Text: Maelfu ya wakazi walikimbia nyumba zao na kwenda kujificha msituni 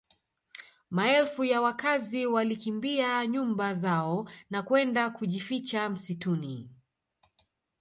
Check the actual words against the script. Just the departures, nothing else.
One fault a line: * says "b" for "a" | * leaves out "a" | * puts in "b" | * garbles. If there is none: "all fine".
all fine